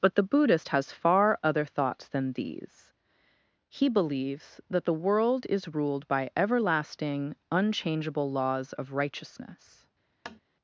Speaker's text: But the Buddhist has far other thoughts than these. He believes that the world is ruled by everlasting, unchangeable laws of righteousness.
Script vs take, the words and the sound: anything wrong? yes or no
yes